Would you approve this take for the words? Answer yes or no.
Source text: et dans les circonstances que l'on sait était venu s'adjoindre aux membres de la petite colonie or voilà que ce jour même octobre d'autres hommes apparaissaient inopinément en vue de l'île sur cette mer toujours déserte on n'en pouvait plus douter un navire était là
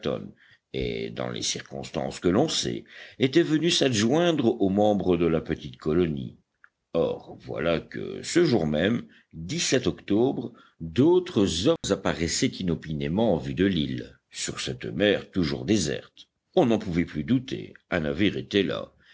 yes